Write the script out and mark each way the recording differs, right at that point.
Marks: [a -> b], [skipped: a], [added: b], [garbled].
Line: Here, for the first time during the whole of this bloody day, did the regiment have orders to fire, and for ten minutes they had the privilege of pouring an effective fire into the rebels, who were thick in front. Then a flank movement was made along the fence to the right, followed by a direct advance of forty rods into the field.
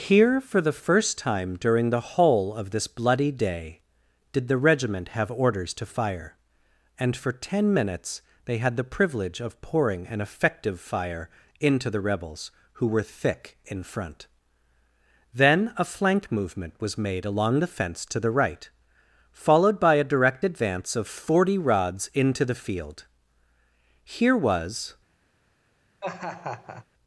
Here, for the first time during the whole of this bloody day, did the regiment have orders to fire, and for ten minutes they had the privilege of pouring an effective fire into the rebels, who were thick in front. Then a flank movement was made along the fence to the right, followed by a direct advance of forty rods into the field. [added: Here was]